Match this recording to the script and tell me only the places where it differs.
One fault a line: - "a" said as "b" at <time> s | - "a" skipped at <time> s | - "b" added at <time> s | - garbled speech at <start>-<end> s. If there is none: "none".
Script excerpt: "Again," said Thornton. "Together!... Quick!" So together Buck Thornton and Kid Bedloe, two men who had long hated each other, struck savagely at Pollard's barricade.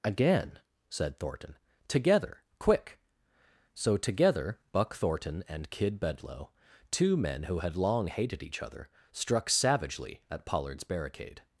none